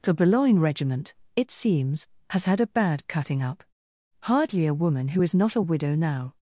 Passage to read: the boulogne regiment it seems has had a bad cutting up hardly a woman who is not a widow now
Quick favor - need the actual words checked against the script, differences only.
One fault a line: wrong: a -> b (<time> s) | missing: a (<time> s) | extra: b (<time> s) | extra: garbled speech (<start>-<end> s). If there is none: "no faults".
no faults